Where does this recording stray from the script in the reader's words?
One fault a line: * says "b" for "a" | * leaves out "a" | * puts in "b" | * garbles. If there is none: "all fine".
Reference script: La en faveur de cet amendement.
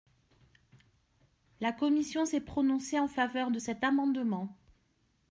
* puts in "commission s'est prononcée"